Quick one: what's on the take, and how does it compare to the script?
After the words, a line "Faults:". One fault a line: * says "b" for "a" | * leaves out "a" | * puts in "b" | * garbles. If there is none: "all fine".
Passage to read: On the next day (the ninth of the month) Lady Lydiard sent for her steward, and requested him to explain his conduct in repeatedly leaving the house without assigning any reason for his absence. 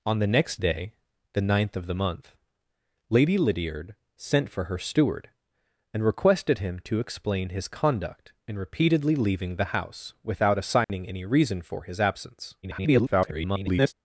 On the next day (the ninth of the month) Lady Lydiard sent for her steward, and requested him to explain his conduct in repeatedly leaving the house without assigning any reason for his absence. [garbled]
Faults:
* garbles